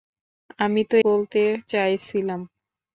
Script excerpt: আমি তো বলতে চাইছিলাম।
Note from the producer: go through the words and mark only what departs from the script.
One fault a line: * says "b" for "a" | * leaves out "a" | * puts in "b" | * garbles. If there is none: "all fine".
all fine